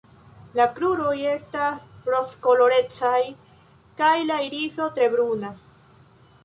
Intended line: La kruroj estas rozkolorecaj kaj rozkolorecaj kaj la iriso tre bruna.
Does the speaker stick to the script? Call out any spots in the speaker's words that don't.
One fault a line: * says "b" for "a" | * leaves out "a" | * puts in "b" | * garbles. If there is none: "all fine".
* leaves out "rozkolorecaj kaj"